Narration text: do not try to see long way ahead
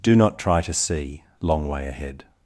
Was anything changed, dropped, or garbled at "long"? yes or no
no